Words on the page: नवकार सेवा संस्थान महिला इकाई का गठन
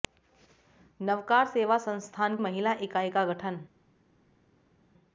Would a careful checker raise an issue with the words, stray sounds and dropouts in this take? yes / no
no